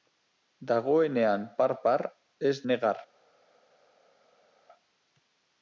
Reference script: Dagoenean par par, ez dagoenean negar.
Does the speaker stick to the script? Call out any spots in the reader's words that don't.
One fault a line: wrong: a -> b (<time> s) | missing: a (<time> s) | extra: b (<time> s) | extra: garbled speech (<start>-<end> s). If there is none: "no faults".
missing: dagoenean (2.5 s)